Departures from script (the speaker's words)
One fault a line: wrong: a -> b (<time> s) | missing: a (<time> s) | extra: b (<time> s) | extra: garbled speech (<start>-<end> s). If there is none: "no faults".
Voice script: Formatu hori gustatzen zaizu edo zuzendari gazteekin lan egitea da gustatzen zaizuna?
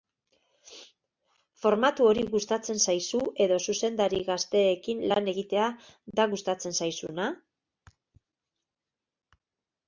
no faults